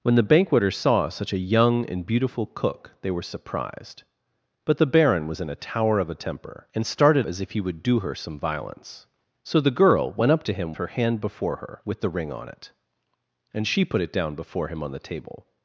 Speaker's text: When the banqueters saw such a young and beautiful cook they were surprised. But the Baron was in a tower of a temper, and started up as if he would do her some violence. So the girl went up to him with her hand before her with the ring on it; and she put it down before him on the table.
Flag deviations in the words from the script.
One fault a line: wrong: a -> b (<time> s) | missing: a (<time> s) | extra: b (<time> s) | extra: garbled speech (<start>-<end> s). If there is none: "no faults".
missing: up (7.3 s)
missing: with (10.7 s)